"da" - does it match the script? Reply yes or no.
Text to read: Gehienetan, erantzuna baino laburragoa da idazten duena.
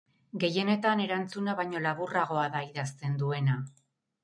yes